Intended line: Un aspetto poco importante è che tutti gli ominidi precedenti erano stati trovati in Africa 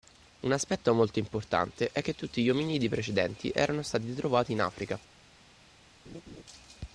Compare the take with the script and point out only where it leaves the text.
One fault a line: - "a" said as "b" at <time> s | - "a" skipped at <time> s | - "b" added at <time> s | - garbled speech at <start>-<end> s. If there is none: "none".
- "poco" said as "molto" at 0.9 s